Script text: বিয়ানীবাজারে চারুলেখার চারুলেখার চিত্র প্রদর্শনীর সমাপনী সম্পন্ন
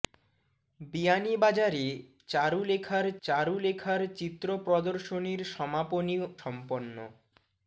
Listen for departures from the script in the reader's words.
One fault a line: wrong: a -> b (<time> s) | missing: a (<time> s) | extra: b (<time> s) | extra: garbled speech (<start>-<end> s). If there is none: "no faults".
no faults